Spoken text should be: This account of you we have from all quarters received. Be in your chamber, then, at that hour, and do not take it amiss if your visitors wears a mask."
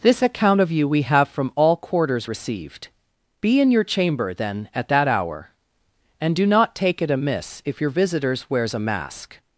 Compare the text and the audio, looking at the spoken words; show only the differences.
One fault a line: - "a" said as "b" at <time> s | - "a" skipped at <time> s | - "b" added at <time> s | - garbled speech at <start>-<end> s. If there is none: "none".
none